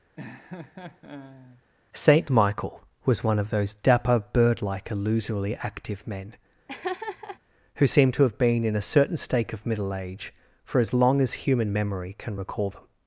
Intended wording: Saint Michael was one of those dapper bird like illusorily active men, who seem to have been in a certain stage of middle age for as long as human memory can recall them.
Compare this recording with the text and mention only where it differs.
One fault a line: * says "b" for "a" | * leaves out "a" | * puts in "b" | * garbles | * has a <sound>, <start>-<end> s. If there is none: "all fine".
* has a laugh, 0.2-1.6 s
* has a laugh, 6.7-7.4 s
* says "stake" for "stage"